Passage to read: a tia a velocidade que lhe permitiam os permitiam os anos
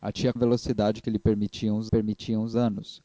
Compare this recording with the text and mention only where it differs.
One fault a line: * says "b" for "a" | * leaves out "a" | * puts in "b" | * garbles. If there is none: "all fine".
all fine